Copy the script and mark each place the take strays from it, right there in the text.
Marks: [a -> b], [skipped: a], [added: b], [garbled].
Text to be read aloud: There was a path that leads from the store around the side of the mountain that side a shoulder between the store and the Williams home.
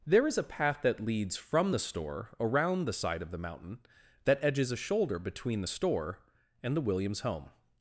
There [was -> is] a path that leads from the store around the side of the mountain that [side -> edges] a shoulder between the store and the Williams home.